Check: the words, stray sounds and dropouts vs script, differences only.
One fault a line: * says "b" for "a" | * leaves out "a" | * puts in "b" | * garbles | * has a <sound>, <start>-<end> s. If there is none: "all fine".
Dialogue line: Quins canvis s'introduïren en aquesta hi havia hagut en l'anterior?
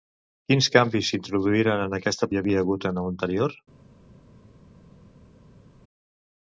all fine